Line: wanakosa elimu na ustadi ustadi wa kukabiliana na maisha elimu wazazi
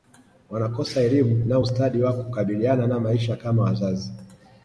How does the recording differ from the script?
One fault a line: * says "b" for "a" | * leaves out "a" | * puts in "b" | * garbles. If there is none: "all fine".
* leaves out "ustadi"
* says "kama" for "elimu"